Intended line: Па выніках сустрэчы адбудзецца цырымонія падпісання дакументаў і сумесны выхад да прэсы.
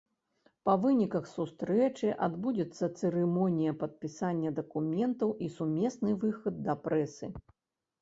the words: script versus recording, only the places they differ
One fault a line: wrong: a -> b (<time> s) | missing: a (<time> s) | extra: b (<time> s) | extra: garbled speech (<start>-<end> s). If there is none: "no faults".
no faults